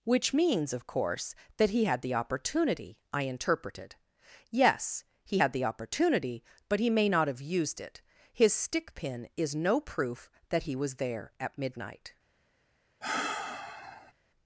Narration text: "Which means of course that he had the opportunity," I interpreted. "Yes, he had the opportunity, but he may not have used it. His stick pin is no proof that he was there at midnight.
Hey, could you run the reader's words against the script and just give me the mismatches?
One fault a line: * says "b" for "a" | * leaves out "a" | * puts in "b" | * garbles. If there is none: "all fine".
all fine